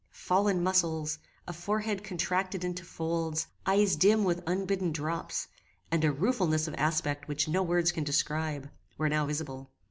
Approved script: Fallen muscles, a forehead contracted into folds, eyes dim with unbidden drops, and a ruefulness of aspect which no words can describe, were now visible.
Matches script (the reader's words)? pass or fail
pass